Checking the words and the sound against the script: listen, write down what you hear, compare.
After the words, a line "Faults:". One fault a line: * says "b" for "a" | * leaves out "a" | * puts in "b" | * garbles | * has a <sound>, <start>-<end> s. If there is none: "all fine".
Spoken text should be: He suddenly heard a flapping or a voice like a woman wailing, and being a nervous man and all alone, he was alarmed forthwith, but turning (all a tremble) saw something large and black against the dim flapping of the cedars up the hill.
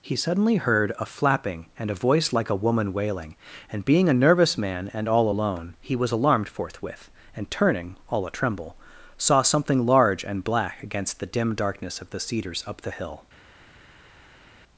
He suddenly heard a flapping and a voice like a woman wailing, and being a nervous man and all alone, he was alarmed forthwith, and turning (all a tremble) saw something large and black against the dim darkness of the cedars up the hill.
Faults:
* says "and" for "or"
* says "and" for "but"
* says "darkness" for "flapping"